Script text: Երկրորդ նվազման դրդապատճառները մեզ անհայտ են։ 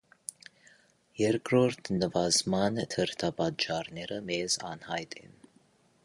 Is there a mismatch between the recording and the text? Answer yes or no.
no